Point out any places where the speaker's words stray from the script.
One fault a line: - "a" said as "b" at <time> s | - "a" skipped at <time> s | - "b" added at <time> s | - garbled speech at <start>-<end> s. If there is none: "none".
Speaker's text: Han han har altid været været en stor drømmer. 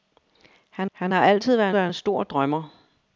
none